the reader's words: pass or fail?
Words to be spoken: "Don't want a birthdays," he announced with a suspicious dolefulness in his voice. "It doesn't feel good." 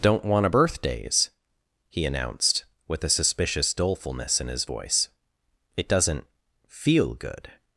pass